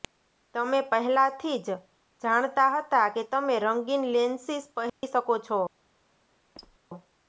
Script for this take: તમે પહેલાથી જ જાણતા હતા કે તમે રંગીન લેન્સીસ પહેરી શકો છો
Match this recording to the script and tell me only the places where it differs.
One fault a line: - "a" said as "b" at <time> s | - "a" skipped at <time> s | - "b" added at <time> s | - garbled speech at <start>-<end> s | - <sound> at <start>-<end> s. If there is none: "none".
- dropout at 4.9-5.0 s
- squeak at 6.6-6.8 s